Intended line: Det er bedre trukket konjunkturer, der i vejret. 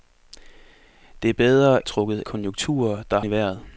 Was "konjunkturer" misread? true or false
false